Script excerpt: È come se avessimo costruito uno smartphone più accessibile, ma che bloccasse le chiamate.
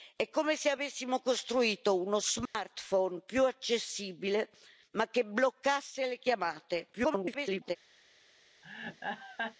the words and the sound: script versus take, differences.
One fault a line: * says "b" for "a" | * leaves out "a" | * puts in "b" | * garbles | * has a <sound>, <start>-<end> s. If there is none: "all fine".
* has a dropout, 2.5-2.5 s
* garbles
* has a laugh, 8.6-9.6 s